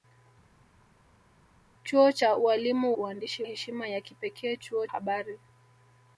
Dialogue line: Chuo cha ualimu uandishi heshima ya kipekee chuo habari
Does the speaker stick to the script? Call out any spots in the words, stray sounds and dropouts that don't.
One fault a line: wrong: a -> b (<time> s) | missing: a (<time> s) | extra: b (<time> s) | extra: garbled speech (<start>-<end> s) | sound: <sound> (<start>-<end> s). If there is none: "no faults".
no faults